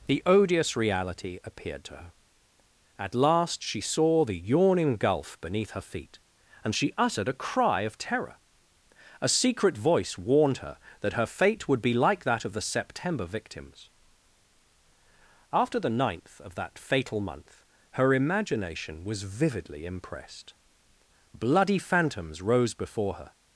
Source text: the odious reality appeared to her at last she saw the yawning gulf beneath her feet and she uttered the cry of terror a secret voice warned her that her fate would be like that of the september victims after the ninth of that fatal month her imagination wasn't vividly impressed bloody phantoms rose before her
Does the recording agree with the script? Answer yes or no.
no